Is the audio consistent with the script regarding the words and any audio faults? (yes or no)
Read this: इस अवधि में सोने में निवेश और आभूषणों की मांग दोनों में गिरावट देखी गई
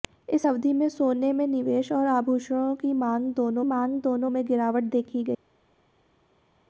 no